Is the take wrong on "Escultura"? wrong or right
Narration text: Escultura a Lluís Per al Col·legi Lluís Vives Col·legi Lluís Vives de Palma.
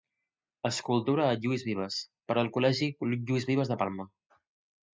right